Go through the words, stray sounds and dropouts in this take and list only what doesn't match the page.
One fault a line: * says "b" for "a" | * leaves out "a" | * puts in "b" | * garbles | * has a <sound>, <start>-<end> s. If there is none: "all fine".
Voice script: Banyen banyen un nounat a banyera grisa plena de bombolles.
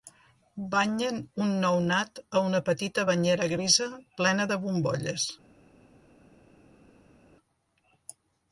* leaves out "banyen"
* puts in "una petita"